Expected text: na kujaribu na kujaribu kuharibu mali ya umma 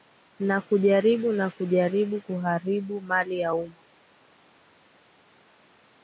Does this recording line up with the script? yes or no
yes